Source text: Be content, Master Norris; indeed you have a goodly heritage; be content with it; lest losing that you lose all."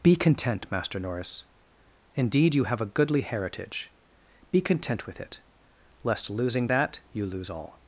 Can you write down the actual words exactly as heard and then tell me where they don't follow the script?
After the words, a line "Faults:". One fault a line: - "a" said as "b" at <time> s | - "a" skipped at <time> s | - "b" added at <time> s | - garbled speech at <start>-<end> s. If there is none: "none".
Be content, Master Norris; indeed you have a goodly heritage; be content with it; lest losing that you lose all."
Faults:
none